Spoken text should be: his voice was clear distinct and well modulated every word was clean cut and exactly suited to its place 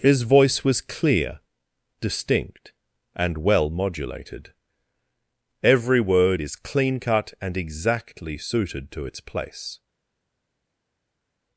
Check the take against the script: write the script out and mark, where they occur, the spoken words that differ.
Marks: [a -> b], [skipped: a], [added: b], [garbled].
his voice was clear distinct and well modulated every word [was -> is] clean cut and exactly suited to its place